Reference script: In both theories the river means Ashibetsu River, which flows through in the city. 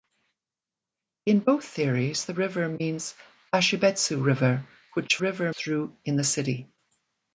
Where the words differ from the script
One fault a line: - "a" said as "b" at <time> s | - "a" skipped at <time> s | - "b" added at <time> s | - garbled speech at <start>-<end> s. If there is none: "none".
- "flows" said as "river" at 5.2 s